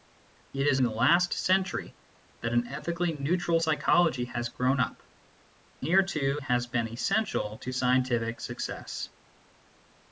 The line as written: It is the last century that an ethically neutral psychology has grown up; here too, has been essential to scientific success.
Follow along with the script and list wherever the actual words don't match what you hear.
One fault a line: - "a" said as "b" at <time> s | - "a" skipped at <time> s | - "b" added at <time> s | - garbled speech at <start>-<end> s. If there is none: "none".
none